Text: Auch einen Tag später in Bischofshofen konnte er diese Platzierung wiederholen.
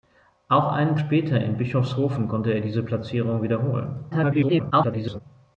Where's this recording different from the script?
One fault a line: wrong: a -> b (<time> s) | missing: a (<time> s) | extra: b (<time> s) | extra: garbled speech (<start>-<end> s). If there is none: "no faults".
missing: Tag (0.9 s)
extra: garbled speech (4.1-5.2 s)